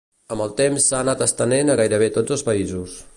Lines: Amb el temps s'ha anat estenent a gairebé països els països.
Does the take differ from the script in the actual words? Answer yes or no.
yes